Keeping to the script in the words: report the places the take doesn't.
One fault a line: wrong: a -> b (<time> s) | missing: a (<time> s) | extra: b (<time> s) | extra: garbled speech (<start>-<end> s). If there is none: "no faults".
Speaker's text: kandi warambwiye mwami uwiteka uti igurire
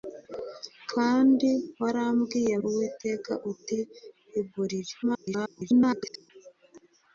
missing: mwami (2.6 s)
extra: garbled speech (5.0-6.3 s)